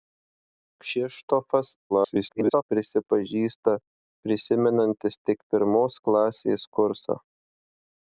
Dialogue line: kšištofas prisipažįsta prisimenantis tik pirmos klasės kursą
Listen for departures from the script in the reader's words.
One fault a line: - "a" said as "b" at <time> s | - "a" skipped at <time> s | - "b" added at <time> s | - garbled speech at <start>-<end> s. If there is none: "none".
- garbled speech at 1.9-2.6 s